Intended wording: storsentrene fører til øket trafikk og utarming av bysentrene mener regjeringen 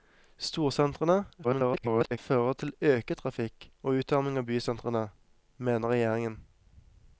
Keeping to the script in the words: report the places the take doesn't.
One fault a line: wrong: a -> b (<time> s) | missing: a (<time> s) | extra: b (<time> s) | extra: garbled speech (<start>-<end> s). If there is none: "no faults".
extra: garbled speech (1.4-2.2 s)